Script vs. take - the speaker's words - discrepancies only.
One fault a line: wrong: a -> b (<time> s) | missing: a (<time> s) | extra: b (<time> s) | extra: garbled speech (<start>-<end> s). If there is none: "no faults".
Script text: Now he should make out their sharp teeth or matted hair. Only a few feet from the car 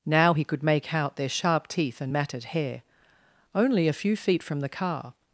wrong: should -> could (0.4 s)
wrong: or -> and (2.0 s)